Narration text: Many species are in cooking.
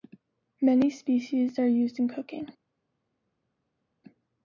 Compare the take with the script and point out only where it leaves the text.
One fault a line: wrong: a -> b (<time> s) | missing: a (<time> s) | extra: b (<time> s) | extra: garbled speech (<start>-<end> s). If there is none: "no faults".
extra: used (1.7 s)